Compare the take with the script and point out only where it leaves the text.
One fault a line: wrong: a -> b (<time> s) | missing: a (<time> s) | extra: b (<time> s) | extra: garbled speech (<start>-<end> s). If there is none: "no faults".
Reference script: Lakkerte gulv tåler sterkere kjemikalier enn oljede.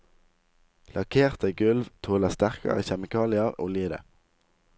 missing: enn (3.6 s)